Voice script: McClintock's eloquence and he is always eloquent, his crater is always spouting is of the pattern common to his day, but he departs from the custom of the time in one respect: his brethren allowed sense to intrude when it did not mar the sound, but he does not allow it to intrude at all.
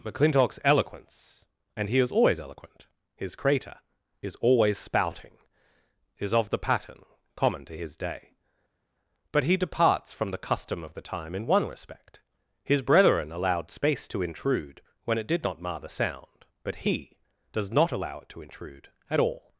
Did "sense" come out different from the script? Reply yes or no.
yes